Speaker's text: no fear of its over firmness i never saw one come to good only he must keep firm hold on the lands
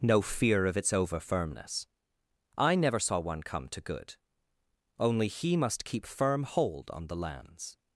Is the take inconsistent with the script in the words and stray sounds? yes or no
no